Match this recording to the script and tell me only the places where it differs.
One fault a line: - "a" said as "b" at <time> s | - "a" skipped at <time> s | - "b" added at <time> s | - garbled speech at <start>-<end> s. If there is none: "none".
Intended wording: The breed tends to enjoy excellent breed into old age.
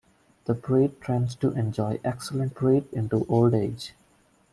none